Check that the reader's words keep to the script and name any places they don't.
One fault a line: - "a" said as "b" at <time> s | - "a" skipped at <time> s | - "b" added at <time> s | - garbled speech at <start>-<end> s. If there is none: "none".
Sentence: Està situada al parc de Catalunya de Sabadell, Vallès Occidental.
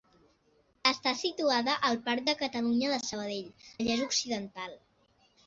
none